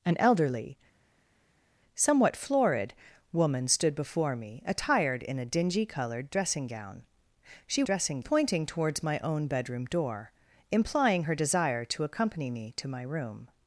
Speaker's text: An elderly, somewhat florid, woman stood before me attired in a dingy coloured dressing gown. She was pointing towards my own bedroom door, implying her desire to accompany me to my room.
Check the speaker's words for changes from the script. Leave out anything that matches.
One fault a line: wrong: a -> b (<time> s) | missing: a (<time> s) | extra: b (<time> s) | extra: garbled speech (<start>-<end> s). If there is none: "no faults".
wrong: was -> dressing (7.8 s)